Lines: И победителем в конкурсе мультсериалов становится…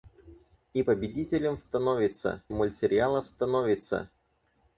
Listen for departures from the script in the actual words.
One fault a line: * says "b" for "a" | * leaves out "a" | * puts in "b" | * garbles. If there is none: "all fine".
* says "становится" for "конкурсе"